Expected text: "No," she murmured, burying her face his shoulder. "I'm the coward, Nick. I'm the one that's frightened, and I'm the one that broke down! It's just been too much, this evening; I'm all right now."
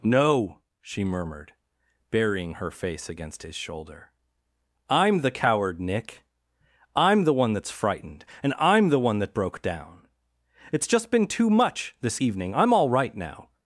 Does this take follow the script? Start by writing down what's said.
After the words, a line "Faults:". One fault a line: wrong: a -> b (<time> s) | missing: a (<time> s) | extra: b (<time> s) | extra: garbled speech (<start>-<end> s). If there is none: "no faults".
"No," she murmured, burying her face against his shoulder. "I'm the coward, Nick. I'm the one that's frightened, and I'm the one that broke down! It's just been too much, this evening; I'm all right now."
Faults:
extra: against (3.1 s)